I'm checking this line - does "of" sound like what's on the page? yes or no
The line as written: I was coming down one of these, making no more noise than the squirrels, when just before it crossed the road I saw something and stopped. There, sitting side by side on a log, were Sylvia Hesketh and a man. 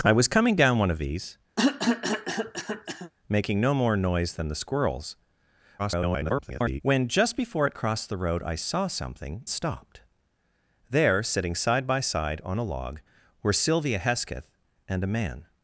yes